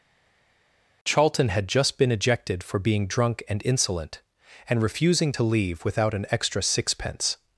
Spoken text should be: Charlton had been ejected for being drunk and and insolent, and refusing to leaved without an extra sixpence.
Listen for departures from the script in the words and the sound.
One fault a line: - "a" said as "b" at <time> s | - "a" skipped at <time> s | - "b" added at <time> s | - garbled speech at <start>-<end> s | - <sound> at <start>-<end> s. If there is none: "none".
- "just" added at 1.7 s
- "and" skipped at 3.6 s
- "leaved" said as "leave" at 5.4 s